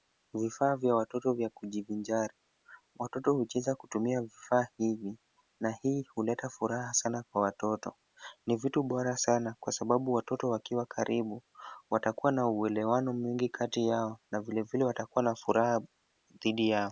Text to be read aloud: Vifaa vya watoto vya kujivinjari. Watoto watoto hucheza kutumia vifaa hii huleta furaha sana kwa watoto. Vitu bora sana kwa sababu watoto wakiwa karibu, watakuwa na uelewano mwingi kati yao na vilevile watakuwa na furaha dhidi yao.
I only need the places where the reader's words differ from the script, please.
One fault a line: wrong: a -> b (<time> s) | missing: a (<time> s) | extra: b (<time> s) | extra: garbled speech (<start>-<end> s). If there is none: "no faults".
missing: watoto (3.3 s)
extra: hivi na (4.8 s)
extra: Ni (8.4 s)